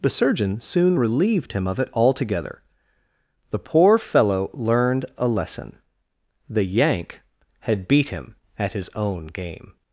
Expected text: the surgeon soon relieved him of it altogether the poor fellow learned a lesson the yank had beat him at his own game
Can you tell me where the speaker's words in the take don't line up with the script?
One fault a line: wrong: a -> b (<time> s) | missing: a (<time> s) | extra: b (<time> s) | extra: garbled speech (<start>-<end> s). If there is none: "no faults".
no faults